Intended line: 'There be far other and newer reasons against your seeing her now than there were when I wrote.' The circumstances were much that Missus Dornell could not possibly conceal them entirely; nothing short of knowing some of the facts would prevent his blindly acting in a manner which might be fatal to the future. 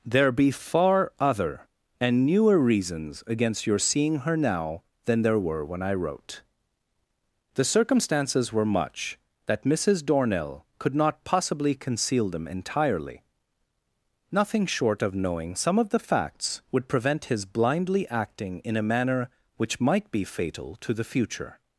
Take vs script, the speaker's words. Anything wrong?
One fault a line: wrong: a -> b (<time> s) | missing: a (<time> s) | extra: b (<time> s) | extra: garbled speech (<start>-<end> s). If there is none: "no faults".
no faults